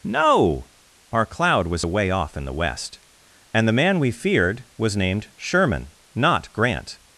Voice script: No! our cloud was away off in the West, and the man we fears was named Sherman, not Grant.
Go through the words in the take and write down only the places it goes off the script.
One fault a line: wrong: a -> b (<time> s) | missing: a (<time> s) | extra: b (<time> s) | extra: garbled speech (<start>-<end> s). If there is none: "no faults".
wrong: fears -> feared (4.1 s)